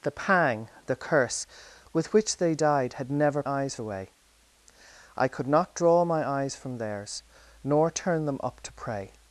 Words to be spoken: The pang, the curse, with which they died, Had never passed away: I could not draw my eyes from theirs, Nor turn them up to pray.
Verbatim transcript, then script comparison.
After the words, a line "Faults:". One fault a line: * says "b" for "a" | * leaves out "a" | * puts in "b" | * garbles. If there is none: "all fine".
The pang, the curse, with which they died, Had never eyes away: I could not draw my eyes from theirs, Nor turn them up to pray.
Faults:
* says "eyes" for "passed"